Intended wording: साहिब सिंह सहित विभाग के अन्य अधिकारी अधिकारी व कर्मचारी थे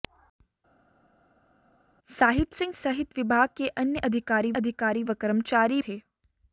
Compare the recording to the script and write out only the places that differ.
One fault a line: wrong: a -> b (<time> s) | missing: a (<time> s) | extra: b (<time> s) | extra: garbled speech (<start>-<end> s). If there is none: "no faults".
no faults